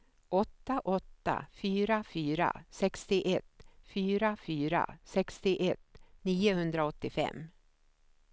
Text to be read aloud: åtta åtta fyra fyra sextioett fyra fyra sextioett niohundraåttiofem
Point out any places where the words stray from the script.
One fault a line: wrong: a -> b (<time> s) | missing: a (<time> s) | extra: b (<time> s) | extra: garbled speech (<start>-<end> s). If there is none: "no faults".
no faults